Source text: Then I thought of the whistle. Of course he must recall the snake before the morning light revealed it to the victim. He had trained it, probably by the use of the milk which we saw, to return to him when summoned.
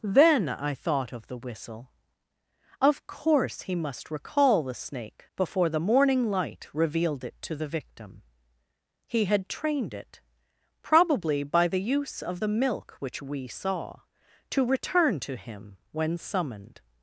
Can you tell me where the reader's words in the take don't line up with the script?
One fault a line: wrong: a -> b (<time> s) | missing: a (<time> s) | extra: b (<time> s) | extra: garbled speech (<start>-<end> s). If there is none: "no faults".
no faults